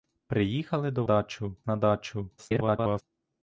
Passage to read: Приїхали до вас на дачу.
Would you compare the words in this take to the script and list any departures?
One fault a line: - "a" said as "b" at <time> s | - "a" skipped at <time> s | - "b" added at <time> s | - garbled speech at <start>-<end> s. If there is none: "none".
- "вас" said as "дачу" at 1.0 s
- garbled speech at 2.4-3.0 s